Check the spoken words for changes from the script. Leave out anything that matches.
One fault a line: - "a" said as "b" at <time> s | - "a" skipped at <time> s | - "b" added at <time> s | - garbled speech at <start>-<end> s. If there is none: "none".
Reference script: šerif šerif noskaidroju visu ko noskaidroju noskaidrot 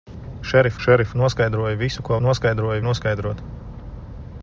none